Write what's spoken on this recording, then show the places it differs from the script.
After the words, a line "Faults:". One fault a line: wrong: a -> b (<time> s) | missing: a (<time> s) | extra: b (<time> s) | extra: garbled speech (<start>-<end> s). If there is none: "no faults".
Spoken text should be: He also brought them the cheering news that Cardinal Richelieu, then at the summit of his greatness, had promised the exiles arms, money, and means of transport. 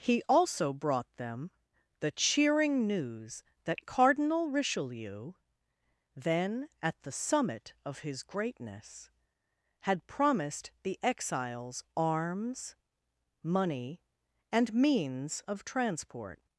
He also brought them the cheering news that Cardinal Richelieu, then at the summit of his greatness, had promised the exiles arms, money, and means of transport.
Faults:
no faults